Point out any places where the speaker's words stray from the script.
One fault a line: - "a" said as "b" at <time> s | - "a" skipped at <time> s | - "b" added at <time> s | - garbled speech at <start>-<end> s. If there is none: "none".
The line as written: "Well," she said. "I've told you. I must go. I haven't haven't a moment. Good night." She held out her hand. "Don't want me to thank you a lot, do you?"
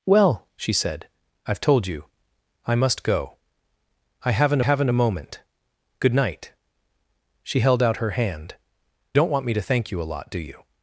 none